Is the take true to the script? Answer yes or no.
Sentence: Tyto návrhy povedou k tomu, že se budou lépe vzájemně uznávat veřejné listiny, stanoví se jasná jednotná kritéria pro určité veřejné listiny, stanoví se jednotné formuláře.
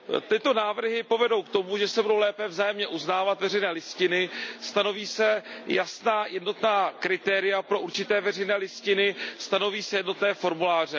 yes